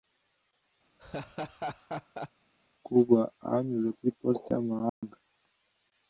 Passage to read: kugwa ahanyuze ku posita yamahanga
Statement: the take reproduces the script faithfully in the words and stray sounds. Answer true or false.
false